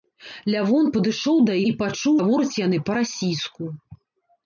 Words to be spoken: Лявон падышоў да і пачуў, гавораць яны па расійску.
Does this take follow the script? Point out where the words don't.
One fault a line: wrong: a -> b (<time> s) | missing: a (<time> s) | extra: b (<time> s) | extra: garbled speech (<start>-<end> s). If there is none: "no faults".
no faults